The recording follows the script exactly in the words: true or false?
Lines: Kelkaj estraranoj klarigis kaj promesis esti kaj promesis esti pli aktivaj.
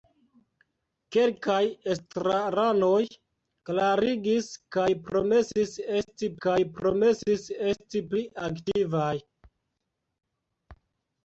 true